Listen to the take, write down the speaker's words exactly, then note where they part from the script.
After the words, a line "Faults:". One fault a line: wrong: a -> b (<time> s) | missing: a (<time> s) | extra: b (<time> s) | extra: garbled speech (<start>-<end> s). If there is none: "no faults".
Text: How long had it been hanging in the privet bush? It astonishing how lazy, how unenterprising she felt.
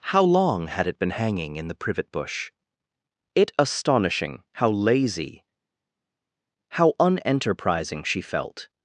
How long had it been hanging in the privet bush? It astonishing how lazy, how unenterprising she felt.
Faults:
no faults